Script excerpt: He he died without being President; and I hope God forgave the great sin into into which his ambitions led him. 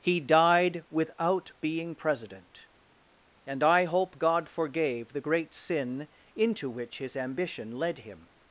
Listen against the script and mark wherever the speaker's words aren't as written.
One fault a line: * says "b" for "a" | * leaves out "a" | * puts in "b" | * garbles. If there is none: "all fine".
* leaves out "he"
* leaves out "into"
* says "ambition" for "ambitions"